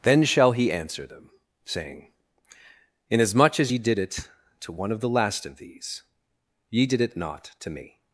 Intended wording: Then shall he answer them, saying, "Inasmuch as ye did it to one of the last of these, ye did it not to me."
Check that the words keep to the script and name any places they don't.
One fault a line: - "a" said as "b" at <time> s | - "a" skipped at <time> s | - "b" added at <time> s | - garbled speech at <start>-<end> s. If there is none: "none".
none